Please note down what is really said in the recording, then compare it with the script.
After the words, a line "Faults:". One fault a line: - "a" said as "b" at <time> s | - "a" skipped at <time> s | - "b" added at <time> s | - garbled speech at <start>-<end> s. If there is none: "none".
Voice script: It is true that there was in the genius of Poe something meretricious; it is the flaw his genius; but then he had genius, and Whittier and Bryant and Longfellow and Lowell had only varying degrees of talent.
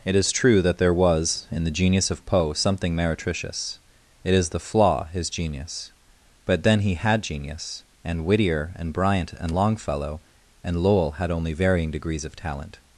It is true that there was in the genius of Poe something meretricious; it is the flaw his genius; but then he had genius, and Whittier and Bryant and Longfellow and Lowell had only varying degrees of talent.
Faults:
none